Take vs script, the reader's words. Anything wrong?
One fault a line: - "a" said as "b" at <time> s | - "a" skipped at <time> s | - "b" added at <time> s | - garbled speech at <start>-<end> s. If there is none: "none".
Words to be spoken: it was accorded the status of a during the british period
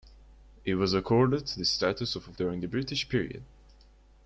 none